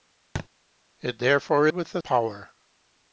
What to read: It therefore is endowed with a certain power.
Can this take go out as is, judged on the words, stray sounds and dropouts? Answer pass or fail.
fail